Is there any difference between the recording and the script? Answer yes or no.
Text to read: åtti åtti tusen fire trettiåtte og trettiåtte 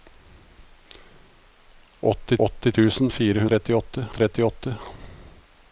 no